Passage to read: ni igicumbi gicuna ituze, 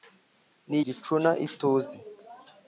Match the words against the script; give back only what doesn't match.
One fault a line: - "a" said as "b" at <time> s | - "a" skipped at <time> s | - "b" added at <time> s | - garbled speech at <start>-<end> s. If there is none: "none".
- "igicumbi" skipped at 0.8 s